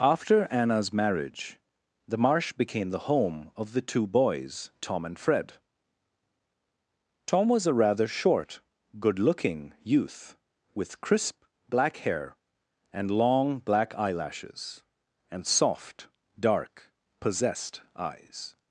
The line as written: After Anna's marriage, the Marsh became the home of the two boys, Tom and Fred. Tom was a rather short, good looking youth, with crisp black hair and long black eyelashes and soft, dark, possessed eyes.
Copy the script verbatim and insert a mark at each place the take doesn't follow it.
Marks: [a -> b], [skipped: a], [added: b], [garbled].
After Anna's marriage, the Marsh became the home of the two boys, Tom and Fred. Tom was a rather short, good looking youth, with crisp black hair and long black eyelashes and soft, dark, possessed eyes.